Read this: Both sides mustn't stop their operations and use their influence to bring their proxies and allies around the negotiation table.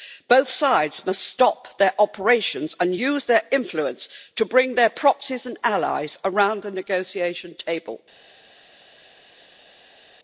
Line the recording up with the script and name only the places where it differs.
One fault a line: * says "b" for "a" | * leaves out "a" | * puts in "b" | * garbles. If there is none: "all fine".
* says "must" for "mustn't"